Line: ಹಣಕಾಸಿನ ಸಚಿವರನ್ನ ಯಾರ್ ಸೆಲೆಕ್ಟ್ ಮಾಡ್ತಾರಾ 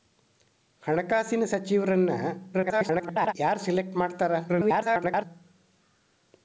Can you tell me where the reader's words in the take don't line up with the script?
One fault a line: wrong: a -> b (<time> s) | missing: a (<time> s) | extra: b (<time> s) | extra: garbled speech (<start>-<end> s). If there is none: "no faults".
extra: garbled speech (2.5-3.3 s)
extra: garbled speech (4.5-5.3 s)